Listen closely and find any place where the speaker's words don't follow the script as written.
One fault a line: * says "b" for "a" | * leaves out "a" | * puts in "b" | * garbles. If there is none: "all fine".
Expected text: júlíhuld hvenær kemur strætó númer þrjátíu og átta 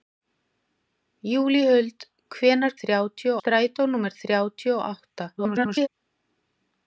* says "þrjátíu" for "kemur"
* garbles